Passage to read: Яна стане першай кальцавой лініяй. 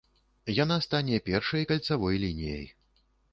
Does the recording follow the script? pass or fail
pass